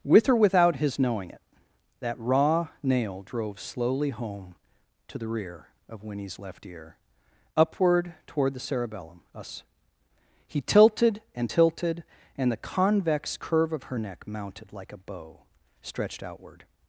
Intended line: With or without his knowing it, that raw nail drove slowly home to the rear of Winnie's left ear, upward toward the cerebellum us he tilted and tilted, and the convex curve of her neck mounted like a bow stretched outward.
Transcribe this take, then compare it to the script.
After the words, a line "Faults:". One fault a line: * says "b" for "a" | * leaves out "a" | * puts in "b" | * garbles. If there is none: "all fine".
With or without his knowing it, that raw nail drove slowly home to the rear of Winnie's left ear, upward toward the cerebellum us he tilted and tilted, and the convex curve of her neck mounted like a bow stretched outward.
Faults:
all fine